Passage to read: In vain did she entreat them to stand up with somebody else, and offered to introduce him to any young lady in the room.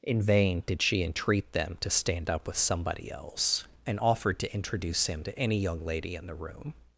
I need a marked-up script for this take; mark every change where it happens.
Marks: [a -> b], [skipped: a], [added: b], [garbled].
In vain did she entreat them to stand up with somebody else, and offered to introduce him to any young lady in the room.